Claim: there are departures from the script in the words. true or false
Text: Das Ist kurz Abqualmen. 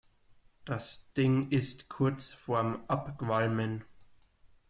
true